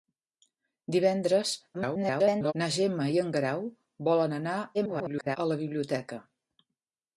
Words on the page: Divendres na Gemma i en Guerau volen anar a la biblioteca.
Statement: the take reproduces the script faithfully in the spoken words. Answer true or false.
false